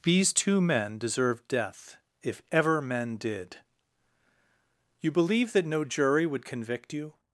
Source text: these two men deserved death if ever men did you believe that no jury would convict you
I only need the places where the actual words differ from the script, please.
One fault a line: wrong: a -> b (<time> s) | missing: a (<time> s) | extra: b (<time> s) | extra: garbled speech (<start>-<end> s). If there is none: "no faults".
no faults